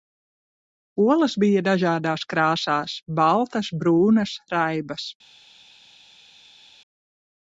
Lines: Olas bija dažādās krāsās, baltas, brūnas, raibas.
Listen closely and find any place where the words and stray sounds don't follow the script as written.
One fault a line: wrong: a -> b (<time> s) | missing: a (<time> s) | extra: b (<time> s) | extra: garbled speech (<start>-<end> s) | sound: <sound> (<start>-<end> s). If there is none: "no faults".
no faults